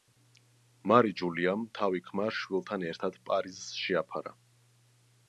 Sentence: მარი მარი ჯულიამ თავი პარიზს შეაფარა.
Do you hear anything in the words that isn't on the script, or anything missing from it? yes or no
yes